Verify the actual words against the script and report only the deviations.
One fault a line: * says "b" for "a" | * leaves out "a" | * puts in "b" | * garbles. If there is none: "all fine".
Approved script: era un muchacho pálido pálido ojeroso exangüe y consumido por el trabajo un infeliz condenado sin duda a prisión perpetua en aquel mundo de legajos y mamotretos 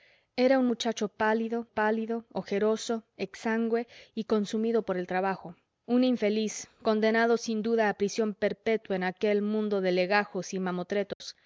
all fine